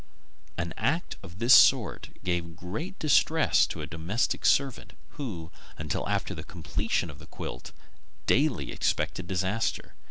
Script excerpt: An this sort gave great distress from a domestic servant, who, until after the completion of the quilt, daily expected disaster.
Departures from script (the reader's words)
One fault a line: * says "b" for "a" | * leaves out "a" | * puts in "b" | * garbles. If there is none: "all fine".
* puts in "act of"
* says "to" for "from"